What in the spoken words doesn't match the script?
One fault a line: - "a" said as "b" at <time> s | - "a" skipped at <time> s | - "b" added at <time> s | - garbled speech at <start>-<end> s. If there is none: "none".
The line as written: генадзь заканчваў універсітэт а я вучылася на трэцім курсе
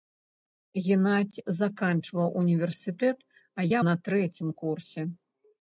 - "вучылася" skipped at 3.8 s